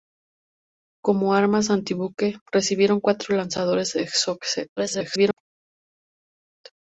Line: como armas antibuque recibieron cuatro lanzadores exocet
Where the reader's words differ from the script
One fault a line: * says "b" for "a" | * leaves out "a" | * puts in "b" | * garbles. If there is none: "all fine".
* garbles